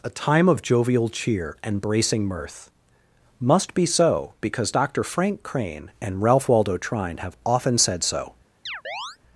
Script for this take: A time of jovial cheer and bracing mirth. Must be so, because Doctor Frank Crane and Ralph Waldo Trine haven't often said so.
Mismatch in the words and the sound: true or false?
true